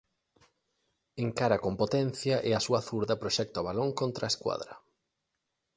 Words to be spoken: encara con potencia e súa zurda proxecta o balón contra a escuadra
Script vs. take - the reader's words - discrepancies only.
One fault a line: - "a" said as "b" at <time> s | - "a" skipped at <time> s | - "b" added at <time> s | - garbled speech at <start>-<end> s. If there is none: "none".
- "a" added at 2.5 s